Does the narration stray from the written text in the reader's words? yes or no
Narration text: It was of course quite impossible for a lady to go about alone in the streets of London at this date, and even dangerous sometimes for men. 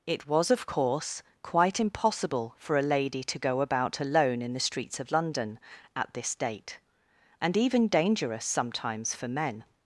no